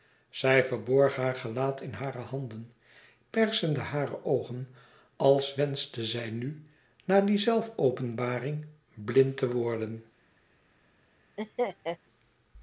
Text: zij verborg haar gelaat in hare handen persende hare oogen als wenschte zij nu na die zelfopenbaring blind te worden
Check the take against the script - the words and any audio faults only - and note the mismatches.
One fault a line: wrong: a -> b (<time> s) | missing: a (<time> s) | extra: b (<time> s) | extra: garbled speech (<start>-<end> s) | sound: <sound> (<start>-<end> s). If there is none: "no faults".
sound: laugh (11.4-12.0 s)